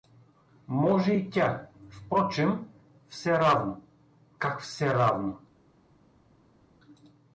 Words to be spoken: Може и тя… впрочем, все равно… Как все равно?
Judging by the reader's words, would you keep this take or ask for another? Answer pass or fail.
pass